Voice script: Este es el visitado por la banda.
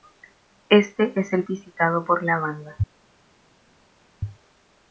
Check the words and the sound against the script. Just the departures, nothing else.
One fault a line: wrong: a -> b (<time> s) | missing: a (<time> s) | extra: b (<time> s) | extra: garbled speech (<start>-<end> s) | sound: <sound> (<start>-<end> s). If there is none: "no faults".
no faults